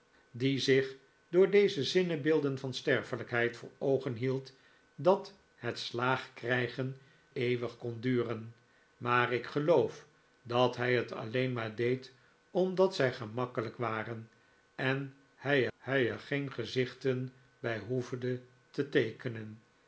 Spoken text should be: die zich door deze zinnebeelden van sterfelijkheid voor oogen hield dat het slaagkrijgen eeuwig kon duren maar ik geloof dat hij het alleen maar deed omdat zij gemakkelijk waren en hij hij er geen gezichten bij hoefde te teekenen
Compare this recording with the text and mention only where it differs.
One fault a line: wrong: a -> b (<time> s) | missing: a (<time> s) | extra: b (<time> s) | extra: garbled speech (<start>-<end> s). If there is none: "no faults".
no faults